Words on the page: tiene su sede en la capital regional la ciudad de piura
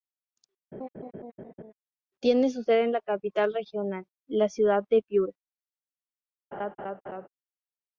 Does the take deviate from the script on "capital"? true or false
false